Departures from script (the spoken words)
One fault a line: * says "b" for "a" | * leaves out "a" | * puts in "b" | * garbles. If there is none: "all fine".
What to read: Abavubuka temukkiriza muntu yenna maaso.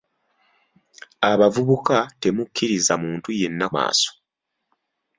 all fine